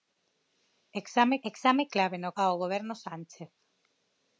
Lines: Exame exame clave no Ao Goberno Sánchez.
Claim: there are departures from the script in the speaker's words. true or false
false